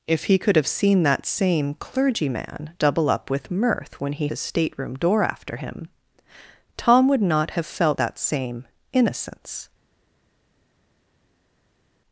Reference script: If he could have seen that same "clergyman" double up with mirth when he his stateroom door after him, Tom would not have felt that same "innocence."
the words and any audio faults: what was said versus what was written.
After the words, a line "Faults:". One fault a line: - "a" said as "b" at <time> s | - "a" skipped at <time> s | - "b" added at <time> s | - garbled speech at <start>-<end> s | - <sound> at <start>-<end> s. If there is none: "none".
If he could have seen that same "clergyman" double up with mirth when he his stateroom door after him, Tom would not have felt that same "innocence."
Faults:
none